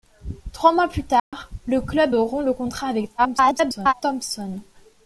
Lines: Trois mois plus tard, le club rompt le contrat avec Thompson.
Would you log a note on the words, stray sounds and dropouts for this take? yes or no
yes